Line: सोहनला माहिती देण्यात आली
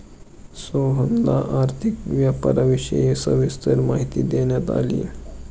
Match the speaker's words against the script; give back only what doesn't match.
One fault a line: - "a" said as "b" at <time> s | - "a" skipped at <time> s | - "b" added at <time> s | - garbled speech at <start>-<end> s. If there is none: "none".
- "आर्थिक व्यापाराविषयी सविस्तर" added at 1.6 s